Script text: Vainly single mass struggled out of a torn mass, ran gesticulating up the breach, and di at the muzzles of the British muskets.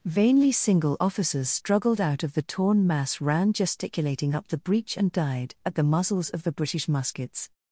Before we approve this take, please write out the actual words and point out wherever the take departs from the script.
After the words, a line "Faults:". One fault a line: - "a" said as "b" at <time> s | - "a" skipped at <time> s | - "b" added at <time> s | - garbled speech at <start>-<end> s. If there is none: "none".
Vainly single officers struggled out of the torn mass, ran gesticulating up the breach, and died at the muzzles of the British muskets.
Faults:
- "mass" said as "officers" at 1.0 s
- "a" said as "the" at 2.3 s
- "di" said as "died" at 5.1 s